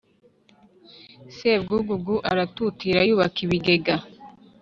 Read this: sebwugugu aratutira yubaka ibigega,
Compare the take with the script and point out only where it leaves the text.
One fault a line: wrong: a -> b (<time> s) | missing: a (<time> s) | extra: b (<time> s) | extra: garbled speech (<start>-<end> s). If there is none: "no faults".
no faults